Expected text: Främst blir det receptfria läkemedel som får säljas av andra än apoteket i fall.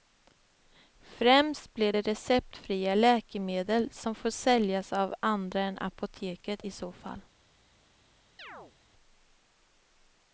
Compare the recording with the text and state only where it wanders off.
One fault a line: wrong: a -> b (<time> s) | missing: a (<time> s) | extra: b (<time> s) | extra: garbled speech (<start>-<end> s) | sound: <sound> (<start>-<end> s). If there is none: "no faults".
extra: så (6.7 s)
sound: chirp (8.4-8.7 s)